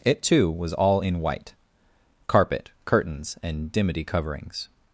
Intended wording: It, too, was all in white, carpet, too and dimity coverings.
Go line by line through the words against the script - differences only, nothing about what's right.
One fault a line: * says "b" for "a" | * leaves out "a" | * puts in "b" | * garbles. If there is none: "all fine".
* says "curtains" for "too"